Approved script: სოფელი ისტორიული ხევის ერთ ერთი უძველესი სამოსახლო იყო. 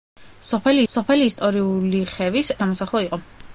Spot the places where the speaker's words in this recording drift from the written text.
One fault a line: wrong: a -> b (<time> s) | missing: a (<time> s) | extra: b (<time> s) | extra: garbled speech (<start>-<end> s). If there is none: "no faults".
extra: სოფელი (0.9 s)
missing: ერთ ერთი უძველესი (2.5 s)